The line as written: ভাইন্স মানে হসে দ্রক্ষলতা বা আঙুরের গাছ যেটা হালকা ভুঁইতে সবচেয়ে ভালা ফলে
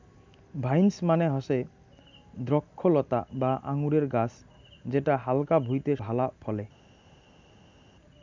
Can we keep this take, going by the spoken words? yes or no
no